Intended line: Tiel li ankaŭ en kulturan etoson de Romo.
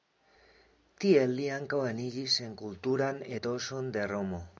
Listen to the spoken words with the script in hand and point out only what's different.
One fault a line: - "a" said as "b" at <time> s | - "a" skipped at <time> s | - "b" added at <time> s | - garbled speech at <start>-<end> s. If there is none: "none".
- "eniĝis" added at 1.9 s